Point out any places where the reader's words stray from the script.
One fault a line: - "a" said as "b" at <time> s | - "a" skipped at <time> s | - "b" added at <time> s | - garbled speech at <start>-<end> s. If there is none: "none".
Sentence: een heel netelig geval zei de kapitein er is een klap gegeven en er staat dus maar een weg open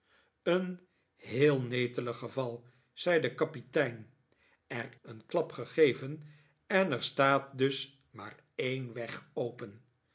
- "is" skipped at 4.9 s